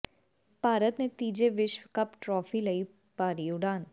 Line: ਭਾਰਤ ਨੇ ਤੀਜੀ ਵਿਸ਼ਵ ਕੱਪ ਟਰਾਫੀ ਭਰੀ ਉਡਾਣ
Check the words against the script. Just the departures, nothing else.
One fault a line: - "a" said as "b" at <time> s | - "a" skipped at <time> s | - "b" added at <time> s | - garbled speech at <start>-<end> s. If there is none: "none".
- "ਲਈ" added at 2.6 s